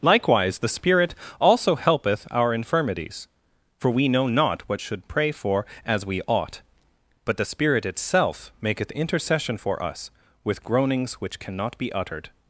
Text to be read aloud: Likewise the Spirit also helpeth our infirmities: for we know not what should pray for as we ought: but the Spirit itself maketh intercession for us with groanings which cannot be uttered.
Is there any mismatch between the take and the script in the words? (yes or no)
no